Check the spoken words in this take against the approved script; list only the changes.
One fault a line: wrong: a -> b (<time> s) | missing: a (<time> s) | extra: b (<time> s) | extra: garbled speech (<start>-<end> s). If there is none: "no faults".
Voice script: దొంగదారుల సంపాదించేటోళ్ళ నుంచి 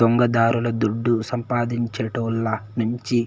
extra: దుడ్డు (0.8 s)